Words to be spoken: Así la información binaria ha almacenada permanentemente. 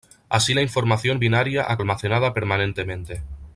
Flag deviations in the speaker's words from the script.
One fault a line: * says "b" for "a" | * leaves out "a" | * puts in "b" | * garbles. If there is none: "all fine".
all fine